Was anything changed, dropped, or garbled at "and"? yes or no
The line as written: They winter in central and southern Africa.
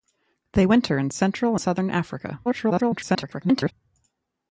yes